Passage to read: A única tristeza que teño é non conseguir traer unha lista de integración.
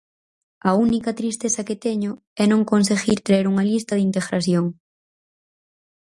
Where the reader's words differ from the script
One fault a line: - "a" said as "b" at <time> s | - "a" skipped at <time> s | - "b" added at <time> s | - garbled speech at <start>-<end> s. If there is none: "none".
none